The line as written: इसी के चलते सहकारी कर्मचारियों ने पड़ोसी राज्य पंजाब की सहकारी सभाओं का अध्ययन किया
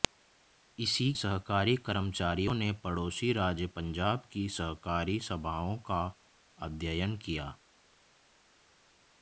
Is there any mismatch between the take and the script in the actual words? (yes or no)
yes